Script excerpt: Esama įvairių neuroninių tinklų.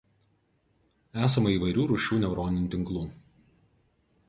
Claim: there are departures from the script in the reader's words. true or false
true